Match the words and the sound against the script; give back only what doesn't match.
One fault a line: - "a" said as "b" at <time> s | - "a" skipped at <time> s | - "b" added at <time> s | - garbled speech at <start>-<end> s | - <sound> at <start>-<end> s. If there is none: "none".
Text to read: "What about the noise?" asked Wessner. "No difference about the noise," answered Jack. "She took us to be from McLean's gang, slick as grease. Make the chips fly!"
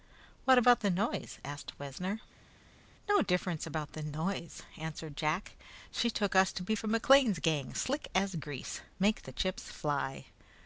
none